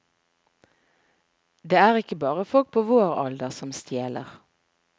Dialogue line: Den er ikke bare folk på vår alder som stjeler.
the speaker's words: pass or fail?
fail